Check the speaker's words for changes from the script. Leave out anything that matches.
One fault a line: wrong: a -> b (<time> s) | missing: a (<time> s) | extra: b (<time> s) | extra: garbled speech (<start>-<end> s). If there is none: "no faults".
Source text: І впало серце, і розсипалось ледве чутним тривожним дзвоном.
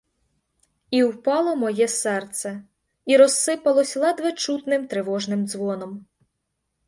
extra: моє (1.6 s)